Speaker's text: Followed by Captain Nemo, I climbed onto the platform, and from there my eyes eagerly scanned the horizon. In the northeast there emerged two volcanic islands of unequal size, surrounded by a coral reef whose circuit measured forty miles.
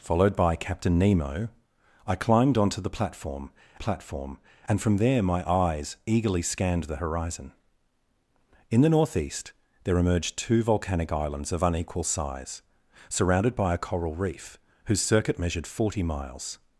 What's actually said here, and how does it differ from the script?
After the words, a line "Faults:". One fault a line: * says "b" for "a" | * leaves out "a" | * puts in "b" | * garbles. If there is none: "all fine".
Followed by Captain Nemo, I climbed onto the platform platform, and from there my eyes eagerly scanned the horizon. In the northeast there emerged two volcanic islands of unequal size, surrounded by a coral reef whose circuit measured forty miles.
Faults:
* puts in "platform"